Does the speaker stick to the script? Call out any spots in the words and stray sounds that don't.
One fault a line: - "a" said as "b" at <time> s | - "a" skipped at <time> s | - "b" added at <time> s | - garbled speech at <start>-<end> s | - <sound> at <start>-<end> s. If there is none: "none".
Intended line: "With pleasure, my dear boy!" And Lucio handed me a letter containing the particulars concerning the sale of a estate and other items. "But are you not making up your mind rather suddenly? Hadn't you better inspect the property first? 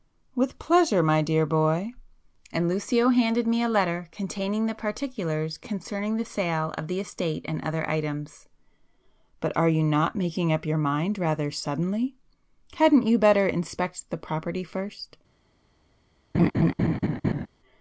- "a" said as "the" at 6.9 s
- laugh at 16.3-17.5 s